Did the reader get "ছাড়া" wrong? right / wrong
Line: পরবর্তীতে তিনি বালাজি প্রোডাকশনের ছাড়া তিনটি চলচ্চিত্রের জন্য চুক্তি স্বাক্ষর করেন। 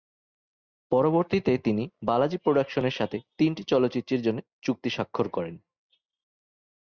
wrong